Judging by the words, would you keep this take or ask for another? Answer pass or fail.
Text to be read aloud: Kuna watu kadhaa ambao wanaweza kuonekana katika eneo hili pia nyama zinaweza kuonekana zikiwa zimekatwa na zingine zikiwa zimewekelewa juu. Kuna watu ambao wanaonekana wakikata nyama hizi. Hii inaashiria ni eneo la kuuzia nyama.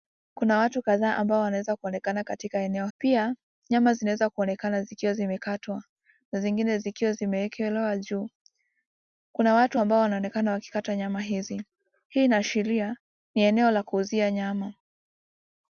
fail